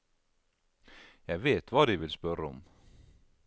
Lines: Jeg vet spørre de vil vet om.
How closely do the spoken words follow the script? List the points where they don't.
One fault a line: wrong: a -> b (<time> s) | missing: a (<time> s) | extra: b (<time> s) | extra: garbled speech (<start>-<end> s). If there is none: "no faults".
wrong: spørre -> hva (1.7 s)
wrong: vet -> spørre (2.1 s)